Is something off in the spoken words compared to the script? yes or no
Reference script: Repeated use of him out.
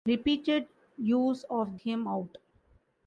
no